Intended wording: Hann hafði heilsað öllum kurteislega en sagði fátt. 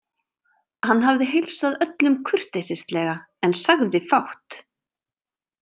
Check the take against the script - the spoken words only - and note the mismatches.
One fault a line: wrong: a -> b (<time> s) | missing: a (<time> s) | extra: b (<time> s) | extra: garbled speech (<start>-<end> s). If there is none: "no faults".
no faults